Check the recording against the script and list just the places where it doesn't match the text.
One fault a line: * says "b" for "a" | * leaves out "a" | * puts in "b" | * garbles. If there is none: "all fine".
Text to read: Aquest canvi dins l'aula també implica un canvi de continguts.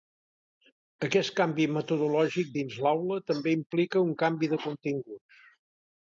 * puts in "metodològic"